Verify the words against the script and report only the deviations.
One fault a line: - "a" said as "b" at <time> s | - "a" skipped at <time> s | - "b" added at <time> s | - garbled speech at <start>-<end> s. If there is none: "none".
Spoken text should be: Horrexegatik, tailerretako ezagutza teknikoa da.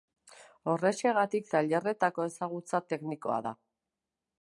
none